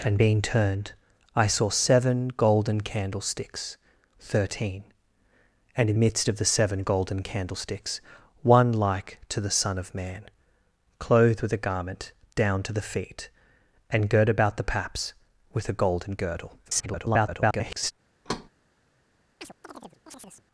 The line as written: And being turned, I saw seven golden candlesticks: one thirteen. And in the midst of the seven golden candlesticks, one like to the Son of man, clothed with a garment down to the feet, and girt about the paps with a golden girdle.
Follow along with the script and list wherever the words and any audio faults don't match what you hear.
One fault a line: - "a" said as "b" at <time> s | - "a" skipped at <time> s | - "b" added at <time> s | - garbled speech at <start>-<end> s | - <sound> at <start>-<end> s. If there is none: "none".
- "one" skipped at 3.8 s
- "the" skipped at 6.0 s
- garbled speech at 16.6-17.9 s
- thud at 18.2-18.5 s
- chirp at 19.4-20.4 s